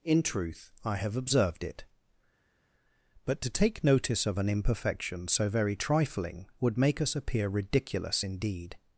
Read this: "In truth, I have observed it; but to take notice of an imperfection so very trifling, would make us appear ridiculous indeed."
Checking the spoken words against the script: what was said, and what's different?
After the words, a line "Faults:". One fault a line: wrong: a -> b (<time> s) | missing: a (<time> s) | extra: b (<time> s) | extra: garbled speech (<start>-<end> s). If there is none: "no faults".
"In truth, I have observed it; but to take notice of an imperfection so very trifling, would make us appear ridiculous indeed."
Faults:
no faults